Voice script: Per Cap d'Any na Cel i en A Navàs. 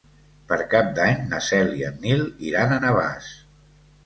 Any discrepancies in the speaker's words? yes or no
yes